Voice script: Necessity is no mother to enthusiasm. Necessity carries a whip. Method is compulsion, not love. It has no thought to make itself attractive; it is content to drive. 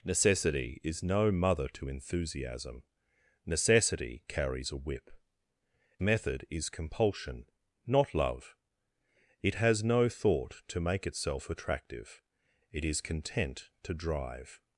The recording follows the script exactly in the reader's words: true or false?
true